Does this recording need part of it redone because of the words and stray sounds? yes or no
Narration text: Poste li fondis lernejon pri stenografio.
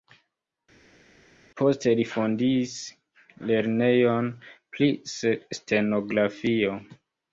no